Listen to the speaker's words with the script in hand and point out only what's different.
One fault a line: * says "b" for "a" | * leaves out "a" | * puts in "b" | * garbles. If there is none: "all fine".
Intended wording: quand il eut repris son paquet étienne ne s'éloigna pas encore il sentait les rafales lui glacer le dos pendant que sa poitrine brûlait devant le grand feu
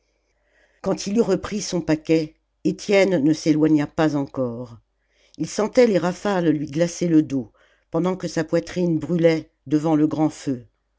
all fine